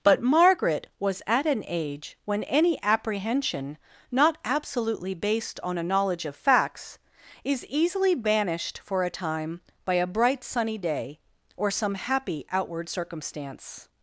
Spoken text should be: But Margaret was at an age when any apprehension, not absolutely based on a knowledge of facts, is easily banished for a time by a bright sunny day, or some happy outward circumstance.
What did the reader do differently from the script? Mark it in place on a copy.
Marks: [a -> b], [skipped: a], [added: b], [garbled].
But Margaret was at an age when any apprehension, not absolutely based on a knowledge of facts, is easily banished for a time by a bright sunny day, or some happy outward circumstance.